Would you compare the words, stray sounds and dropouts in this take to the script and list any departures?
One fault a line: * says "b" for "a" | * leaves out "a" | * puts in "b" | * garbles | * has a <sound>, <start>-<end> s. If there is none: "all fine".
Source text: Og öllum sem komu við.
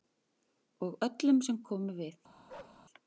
* has a bark, 2.5-2.8 s